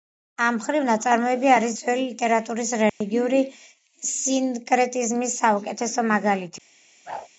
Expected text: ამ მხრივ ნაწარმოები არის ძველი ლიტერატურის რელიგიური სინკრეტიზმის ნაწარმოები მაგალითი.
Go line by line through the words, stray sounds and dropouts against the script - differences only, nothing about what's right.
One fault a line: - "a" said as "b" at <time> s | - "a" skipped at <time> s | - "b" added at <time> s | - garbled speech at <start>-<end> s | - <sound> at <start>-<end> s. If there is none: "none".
- dropout at 2.9-3.0 s
- "ნაწარმოები" said as "საუკეთესო" at 5.5 s
- whoosh at 7.1-7.3 s